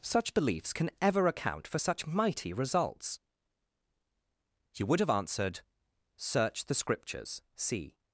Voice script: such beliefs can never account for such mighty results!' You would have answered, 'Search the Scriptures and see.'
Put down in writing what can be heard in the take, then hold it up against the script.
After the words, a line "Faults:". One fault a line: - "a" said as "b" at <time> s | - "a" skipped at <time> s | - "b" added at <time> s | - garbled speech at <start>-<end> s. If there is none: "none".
such beliefs can ever account for such mighty results!' You would have answered, 'Search the Scriptures see.'
Faults:
- "never" said as "ever" at 1.0 s
- "and" skipped at 7.4 s